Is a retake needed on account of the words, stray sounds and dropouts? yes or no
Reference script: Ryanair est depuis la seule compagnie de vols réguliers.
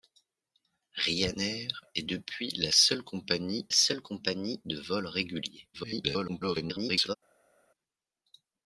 yes